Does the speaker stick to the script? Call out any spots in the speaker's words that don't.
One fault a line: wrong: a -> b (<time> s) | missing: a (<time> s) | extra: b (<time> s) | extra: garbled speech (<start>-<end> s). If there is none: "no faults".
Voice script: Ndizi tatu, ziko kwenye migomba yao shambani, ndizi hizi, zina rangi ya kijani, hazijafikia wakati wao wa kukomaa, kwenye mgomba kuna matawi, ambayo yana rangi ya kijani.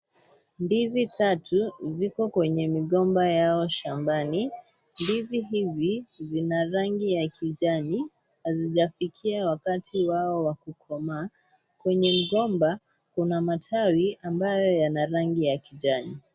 no faults